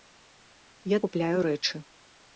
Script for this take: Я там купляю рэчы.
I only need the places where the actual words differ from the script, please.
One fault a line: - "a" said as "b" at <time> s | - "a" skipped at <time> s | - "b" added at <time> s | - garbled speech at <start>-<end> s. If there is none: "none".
- "там" skipped at 1.0 s